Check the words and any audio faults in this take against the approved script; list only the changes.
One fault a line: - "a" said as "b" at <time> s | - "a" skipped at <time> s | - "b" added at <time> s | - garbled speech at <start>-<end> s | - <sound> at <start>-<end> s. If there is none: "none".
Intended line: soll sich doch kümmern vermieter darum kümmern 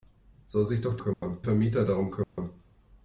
- dropout at 1.1-1.2 s
- dropout at 2.2-2.4 s